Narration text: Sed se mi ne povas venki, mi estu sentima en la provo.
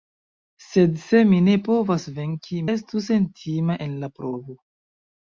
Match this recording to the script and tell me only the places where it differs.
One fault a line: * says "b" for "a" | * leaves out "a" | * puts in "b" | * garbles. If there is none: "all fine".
* leaves out "mi"